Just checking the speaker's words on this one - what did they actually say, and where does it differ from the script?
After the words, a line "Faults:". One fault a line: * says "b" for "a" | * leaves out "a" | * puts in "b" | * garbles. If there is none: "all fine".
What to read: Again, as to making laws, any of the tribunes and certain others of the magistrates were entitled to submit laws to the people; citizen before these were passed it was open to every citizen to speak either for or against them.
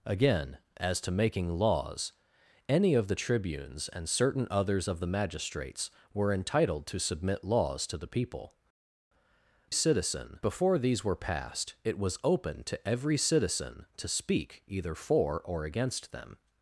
Again, as to making laws, any of the tribunes and certain others of the magistrates were entitled to submit laws to the people; citizen before these were passed it was open to every citizen to speak either for or against them.
Faults:
all fine